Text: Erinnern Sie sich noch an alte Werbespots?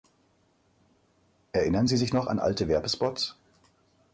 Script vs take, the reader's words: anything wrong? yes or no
no